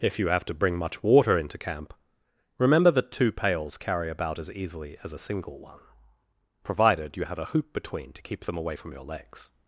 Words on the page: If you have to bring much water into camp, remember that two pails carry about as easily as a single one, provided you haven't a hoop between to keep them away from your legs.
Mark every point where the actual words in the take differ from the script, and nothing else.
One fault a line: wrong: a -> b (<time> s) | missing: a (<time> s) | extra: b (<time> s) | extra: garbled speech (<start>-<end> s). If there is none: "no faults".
wrong: haven't -> have (7.2 s)